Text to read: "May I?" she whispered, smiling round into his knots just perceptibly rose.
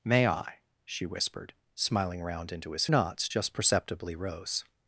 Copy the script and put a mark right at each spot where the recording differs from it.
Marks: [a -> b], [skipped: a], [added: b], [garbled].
"May I?" she whispered, smiling round into his knots just perceptibly rose.